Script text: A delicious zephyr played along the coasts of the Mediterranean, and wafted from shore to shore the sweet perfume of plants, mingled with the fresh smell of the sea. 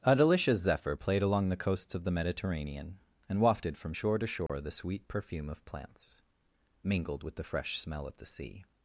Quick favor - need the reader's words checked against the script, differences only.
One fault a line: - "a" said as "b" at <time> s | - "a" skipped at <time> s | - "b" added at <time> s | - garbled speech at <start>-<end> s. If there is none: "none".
none